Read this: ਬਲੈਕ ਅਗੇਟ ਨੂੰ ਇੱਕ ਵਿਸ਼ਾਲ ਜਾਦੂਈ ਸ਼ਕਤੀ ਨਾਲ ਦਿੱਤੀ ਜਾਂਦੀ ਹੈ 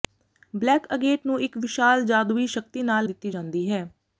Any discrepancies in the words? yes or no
no